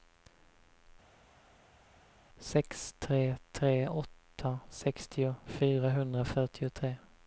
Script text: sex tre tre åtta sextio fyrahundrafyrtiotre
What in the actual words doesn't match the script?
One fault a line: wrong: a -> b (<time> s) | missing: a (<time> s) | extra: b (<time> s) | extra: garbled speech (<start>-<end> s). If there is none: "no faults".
no faults